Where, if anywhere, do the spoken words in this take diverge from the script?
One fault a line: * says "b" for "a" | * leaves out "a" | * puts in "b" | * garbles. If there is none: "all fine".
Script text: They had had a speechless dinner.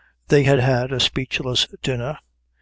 all fine